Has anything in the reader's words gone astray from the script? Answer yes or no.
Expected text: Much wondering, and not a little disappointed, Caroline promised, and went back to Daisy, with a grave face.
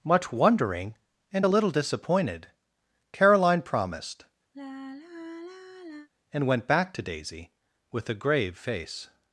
yes